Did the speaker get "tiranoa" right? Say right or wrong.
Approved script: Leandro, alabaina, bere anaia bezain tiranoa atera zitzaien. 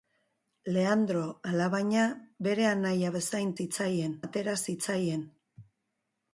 wrong